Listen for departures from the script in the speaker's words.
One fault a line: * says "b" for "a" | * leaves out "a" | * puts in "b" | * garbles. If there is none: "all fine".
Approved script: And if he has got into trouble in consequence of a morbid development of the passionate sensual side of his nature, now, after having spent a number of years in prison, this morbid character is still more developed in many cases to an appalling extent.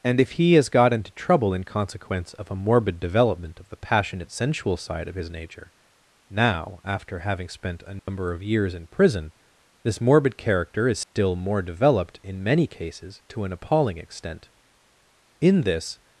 * puts in "In this"